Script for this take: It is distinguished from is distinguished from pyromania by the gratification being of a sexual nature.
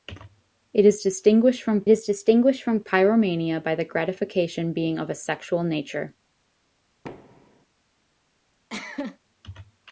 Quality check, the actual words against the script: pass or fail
pass